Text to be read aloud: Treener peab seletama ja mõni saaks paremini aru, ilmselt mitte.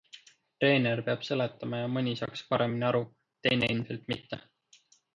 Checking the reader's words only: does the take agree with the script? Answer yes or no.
no